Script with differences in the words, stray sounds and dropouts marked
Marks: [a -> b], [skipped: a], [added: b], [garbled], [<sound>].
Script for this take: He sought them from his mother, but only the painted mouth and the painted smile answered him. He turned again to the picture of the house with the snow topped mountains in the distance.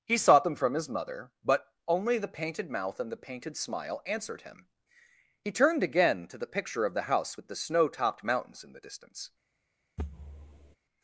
He sought them from his mother, but only the painted mouth and the painted smile answered him. He turned again to the picture of the house with the snow topped mountains in the distance. [thud]